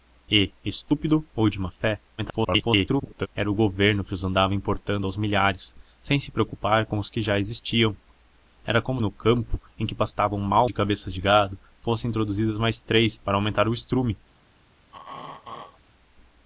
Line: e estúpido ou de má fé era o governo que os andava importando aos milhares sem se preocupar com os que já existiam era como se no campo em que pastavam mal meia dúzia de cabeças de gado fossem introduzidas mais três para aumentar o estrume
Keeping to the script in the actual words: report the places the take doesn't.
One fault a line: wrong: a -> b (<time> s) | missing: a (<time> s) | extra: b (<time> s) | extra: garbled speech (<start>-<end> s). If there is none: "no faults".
extra: garbled speech (2.2-3.3 s)
missing: se (9.0 s)
missing: meia dúzia (10.7 s)